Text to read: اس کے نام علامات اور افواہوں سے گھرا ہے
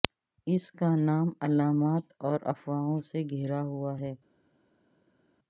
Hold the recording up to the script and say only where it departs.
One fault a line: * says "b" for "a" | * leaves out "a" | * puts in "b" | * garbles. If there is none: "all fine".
* says "کا" for "کے"
* puts in "ہوا"